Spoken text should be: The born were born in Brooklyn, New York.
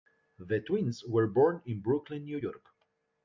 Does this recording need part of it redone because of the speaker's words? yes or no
yes